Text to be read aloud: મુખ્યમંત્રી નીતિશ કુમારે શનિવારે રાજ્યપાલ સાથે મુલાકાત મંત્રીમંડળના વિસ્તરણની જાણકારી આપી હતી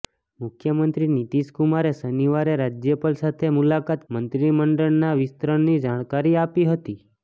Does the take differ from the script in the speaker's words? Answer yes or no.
no